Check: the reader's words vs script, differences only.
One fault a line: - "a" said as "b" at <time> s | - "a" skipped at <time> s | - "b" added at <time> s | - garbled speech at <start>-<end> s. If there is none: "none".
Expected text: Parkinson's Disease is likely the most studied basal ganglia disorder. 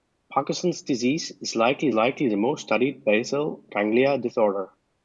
- "likely" added at 1.9 s